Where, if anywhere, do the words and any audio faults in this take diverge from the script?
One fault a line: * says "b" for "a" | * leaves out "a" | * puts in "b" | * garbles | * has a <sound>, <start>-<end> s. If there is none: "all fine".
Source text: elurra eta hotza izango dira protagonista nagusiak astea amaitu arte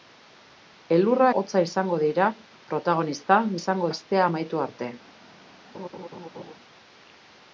* leaves out "eta"
* says "izango" for "nagusiak"
* has a laugh, 5.7-6.5 s